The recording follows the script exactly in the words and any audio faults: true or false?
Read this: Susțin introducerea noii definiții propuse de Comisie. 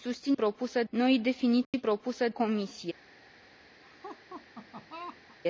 false